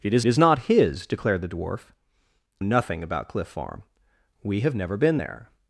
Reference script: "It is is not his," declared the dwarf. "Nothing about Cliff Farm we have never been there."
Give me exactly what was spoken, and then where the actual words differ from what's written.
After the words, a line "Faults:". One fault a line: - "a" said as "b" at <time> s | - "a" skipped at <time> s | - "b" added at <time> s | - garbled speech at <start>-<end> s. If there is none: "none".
"It is is not his," declared the dwarf. "Nothing about Cliff Farm we have never been there."
Faults:
none